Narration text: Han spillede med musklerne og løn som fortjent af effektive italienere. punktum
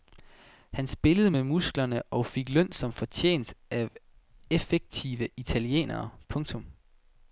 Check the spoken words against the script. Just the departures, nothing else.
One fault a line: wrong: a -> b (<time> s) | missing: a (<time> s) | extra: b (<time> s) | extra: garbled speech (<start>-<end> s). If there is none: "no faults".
extra: fik (2.3 s)